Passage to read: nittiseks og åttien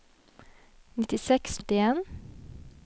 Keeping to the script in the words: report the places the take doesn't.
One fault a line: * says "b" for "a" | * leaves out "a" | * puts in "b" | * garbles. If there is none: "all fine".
all fine